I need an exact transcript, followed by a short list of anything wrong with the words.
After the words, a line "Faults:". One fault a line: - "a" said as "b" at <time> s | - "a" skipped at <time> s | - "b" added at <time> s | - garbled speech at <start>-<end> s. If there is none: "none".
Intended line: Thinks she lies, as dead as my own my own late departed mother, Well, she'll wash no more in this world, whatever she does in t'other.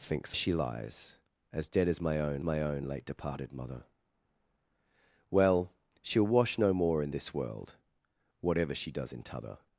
Thinks she lies, as dead as my own my own late departed mother, Well, she'll wash no more in this world, whatever she does in t'other.
Faults:
none